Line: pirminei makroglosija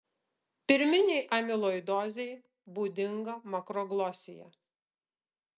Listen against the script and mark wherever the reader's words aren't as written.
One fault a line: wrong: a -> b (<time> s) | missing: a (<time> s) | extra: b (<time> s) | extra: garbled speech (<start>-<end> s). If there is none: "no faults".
extra: amiloidozei būdinga (1.4 s)